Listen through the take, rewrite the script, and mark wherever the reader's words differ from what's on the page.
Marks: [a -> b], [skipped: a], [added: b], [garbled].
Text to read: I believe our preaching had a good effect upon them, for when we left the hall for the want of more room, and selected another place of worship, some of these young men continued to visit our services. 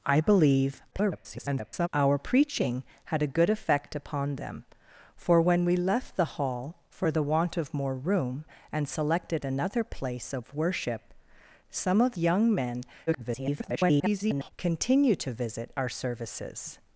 I believe [garbled] our preaching had a good effect upon them, for when we left the hall for the want of more room, and selected another place of worship, some of [skipped: these] young men [garbled] continued to visit our services.